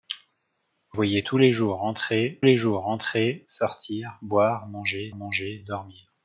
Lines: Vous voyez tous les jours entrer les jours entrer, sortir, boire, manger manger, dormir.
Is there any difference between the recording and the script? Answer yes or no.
no